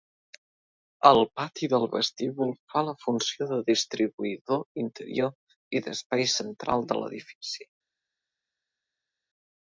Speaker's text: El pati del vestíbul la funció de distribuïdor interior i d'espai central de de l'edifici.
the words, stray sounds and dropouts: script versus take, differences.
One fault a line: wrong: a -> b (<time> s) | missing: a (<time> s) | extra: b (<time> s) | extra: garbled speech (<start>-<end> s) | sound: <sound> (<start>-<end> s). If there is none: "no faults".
extra: fa (2.7 s)
missing: de (7.0 s)